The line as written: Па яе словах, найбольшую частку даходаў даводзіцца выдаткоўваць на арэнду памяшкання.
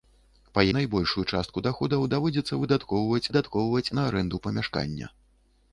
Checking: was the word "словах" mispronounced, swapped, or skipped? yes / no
yes